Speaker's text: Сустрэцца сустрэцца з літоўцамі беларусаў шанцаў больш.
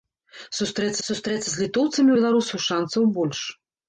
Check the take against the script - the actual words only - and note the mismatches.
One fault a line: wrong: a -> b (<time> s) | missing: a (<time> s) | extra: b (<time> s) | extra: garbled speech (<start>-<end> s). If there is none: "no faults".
no faults